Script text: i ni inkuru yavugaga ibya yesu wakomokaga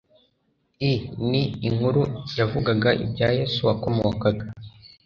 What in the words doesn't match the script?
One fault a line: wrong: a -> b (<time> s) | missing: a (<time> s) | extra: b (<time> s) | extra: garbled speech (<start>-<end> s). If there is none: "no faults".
no faults